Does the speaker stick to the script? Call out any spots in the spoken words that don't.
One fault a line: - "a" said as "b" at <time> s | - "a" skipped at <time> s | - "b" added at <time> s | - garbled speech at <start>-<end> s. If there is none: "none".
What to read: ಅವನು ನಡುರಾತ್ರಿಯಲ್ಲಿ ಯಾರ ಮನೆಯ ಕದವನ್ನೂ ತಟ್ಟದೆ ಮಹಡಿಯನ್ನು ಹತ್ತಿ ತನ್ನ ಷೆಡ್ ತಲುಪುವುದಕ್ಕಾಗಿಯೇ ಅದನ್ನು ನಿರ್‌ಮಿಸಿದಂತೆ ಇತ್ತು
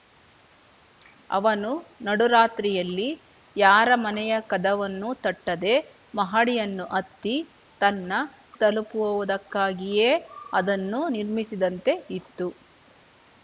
- "ಷೆಡ್" skipped at 8.2 s